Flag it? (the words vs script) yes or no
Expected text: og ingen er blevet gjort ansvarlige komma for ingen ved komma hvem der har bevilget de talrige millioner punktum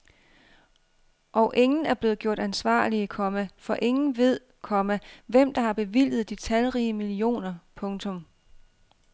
no